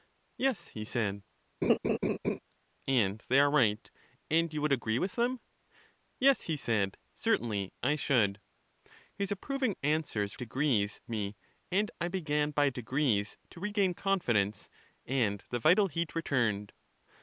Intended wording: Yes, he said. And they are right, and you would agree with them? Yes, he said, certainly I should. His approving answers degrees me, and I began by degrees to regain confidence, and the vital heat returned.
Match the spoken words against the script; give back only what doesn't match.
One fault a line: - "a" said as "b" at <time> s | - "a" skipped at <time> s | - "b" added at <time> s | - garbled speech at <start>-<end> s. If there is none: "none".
none